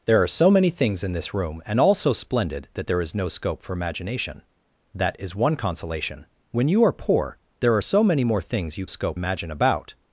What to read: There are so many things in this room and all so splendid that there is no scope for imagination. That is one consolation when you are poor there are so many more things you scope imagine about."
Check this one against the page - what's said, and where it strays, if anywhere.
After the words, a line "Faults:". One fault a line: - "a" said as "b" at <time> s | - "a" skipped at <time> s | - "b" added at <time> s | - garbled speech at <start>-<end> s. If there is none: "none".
There are so many things in this room and all so splendid that there is no scope for imagination. That is one consolation when you are poor there are so many more things you scope imagine about."
Faults:
none